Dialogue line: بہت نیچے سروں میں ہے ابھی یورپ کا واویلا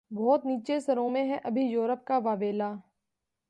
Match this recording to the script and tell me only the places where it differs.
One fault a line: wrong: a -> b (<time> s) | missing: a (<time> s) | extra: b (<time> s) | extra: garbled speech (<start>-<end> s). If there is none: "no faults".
no faults